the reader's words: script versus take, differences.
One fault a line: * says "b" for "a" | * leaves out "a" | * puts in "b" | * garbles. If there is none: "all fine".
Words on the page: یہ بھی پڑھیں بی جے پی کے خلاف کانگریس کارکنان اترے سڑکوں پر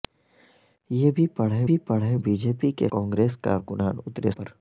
* puts in "بھی پڑھیں"
* leaves out "خلاف"
* leaves out "سڑکوں"